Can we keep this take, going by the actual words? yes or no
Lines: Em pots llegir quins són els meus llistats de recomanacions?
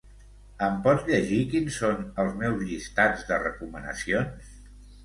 yes